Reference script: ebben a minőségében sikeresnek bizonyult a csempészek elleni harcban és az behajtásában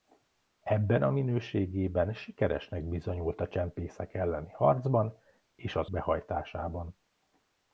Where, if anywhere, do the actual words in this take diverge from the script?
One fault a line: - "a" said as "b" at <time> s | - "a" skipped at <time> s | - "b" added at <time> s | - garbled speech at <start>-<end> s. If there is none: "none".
none